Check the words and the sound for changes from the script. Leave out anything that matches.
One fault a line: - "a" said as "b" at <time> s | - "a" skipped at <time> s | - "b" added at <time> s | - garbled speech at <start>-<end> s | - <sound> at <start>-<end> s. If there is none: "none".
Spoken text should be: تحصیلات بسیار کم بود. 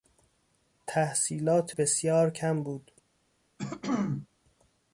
- throat clearing at 3.6-4.3 s